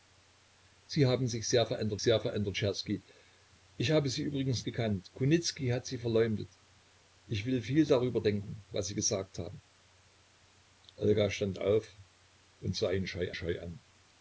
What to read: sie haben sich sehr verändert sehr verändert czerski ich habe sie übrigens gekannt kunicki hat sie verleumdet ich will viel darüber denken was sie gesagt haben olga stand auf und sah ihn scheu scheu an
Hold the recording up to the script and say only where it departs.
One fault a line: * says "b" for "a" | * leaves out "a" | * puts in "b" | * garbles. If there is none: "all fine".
all fine